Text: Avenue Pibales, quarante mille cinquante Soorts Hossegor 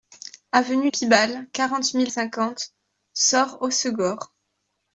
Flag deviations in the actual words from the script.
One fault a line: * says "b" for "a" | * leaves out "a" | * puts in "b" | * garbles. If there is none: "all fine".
all fine